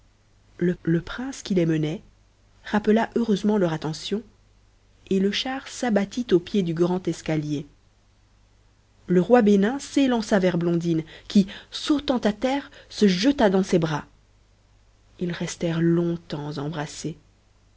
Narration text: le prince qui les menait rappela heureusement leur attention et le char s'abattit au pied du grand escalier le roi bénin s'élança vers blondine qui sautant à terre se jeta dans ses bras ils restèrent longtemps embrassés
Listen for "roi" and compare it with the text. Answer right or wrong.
right